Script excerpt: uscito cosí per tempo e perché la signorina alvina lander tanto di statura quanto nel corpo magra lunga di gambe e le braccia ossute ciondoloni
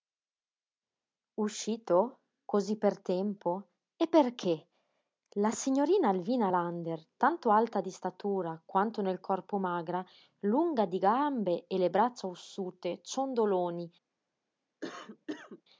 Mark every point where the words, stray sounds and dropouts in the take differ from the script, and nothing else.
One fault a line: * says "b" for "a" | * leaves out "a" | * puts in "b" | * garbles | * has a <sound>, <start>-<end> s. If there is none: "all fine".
* puts in "alta"
* has a cough, 14.8-15.6 s